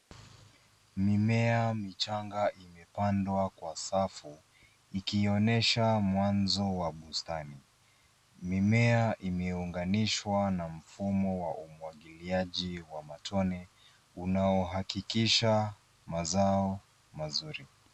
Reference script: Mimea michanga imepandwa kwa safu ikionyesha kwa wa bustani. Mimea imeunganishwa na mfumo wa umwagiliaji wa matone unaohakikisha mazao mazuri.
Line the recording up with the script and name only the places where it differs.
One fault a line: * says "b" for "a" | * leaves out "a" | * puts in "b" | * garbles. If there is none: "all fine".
* says "mwanzo" for "kwa"